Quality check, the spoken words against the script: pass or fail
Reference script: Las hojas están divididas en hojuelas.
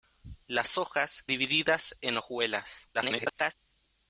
fail